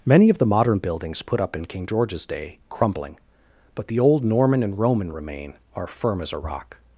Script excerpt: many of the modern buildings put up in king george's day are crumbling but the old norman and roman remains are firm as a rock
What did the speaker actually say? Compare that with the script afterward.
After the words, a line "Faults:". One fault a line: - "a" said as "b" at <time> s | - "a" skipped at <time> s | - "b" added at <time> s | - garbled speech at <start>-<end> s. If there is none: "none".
many of the modern buildings put up in king george's day crumbling but the old norman and roman remain are firm as a rock
Faults:
- "are" skipped at 2.6 s
- "remains" said as "remain" at 5.1 s